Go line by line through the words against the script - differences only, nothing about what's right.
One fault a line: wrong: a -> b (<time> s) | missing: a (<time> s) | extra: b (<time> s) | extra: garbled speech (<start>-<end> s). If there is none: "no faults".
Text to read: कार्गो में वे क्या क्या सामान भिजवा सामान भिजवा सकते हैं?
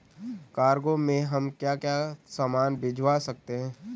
wrong: वे -> हम (1.2 s)
missing: सामान भिजवा (3.2 s)